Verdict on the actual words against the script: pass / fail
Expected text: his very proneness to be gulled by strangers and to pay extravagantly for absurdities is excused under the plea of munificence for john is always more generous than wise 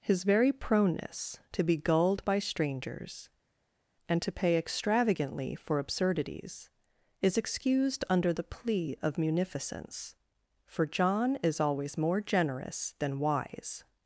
pass